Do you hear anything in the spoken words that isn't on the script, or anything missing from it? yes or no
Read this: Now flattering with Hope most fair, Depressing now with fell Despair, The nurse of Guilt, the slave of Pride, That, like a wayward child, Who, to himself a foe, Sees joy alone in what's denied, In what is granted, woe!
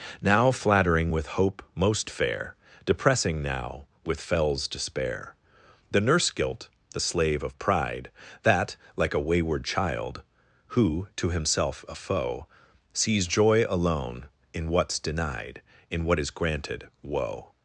yes